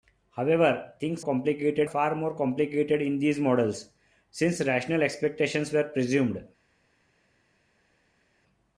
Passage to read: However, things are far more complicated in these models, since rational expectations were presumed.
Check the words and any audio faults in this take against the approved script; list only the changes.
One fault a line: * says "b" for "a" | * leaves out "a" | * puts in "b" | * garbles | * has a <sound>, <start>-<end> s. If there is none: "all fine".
* says "complicated" for "are"